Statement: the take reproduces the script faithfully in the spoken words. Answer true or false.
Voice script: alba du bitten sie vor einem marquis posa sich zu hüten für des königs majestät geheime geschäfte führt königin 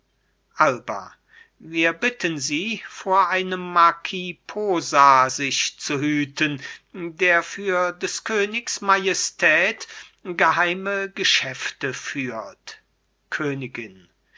false